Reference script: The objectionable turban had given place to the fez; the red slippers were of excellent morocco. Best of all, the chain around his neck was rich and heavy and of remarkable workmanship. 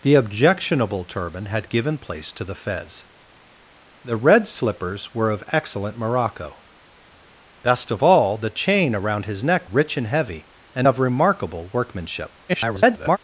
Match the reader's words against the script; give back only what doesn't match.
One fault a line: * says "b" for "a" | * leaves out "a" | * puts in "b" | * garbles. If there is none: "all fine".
* leaves out "was"
* garbles